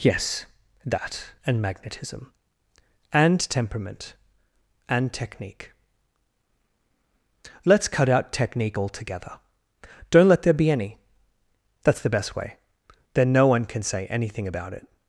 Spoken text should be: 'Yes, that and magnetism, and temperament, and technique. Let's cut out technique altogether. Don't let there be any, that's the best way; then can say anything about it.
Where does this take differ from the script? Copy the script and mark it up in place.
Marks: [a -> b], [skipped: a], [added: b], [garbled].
'Yes, that and magnetism, and temperament, and technique. Let's cut out technique altogether. Don't let there be any, that's the best way; then [added: no one] can say anything about it.